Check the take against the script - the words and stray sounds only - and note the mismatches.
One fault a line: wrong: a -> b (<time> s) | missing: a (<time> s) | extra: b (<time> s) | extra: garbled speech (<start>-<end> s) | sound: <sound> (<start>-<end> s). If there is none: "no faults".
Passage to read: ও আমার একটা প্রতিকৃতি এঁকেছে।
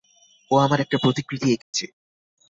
sound: dropout (1.6-1.7 s)